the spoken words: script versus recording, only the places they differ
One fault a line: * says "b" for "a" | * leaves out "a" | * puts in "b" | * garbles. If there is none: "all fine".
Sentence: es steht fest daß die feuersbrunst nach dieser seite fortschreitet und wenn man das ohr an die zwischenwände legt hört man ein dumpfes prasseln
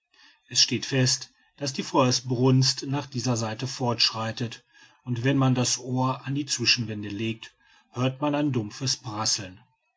all fine